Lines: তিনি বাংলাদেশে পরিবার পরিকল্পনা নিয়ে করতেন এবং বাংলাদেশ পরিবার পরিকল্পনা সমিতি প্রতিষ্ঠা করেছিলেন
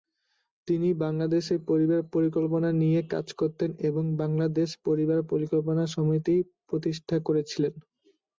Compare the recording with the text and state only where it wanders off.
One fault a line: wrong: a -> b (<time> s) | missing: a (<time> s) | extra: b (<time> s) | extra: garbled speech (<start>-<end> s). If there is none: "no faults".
extra: কাজ (3.1 s)